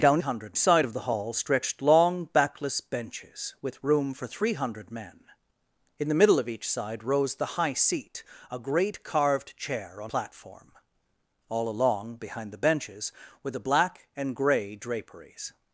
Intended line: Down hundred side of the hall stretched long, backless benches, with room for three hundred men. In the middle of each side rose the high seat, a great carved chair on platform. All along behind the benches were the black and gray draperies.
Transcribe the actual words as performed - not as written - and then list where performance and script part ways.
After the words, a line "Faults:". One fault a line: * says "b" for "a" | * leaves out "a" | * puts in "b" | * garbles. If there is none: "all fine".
Down hundred side of the hall stretched long, backless benches, with room for three hundred men. In the middle of each side rose the high seat, a great carved chair on platform. All along behind the benches were the black and gray draperies.
Faults:
all fine